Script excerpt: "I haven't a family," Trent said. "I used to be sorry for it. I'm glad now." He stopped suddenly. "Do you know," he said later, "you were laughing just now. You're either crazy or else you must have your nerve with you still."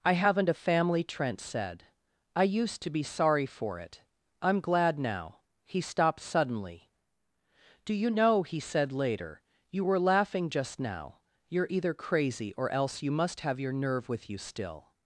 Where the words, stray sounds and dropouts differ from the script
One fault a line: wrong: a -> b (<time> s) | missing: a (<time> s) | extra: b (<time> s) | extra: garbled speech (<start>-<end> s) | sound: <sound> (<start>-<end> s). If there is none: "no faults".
no faults